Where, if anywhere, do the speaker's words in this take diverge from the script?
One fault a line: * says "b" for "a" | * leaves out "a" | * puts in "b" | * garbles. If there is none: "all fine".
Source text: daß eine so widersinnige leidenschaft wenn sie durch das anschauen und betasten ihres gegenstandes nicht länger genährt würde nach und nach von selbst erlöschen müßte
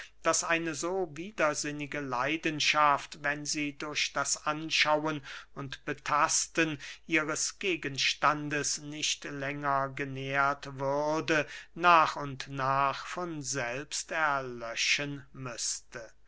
all fine